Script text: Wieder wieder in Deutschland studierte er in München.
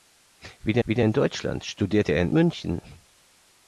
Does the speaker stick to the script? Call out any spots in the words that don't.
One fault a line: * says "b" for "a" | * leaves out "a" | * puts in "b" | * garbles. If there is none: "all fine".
all fine